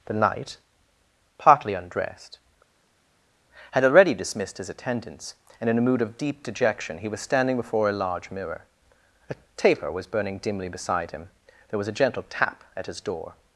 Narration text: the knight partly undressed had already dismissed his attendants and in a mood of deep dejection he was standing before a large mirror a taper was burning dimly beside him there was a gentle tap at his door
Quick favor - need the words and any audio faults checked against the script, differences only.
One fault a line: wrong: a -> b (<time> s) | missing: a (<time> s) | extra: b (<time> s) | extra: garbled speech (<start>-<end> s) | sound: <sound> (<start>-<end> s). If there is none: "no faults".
no faults